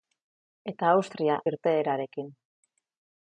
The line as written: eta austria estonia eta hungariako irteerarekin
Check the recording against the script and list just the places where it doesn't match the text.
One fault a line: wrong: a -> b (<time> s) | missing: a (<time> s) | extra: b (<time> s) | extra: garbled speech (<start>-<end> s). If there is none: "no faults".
missing: estonia eta hungariako (1.4 s)